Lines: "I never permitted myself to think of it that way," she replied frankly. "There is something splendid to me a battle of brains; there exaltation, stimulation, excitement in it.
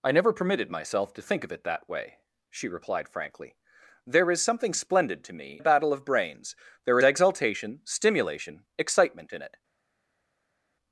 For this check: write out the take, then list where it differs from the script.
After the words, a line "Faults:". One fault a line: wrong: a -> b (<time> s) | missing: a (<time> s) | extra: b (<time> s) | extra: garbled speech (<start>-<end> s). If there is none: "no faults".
"I never permitted myself to think of it that way," she replied frankly. "There is something splendid to me a battle of brains; there exaltation, stimulation, excitement in it.
Faults:
no faults